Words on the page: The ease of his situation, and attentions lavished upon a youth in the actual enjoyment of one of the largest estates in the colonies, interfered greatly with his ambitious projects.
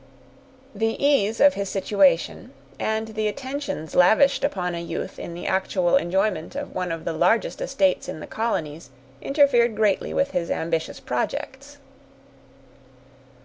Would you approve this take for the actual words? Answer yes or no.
no